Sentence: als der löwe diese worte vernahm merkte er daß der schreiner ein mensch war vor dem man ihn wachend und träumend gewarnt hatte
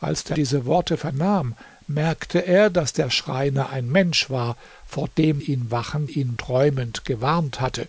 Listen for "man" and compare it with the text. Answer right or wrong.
wrong